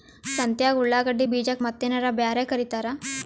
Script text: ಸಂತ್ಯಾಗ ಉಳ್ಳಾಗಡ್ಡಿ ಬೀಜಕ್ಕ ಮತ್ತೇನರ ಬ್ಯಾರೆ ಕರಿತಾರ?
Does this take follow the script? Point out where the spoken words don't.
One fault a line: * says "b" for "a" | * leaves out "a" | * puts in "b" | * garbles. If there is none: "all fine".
all fine